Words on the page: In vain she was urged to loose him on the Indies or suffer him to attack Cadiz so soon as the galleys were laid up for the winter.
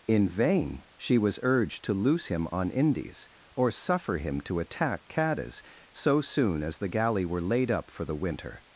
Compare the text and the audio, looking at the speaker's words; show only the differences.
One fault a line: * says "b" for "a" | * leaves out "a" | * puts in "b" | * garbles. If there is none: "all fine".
* leaves out "the"
* says "galley" for "galleys"